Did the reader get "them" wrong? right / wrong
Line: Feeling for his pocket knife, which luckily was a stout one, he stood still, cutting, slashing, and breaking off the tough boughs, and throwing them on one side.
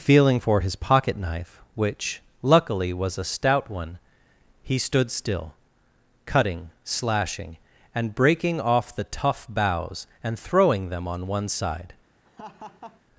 right